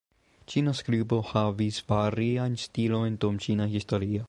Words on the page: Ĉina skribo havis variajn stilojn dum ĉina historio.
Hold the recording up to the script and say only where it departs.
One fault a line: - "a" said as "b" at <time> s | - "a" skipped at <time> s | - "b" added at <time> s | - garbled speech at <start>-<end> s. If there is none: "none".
none